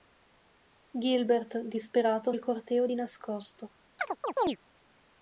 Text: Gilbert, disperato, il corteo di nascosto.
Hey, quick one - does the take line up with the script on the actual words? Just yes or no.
yes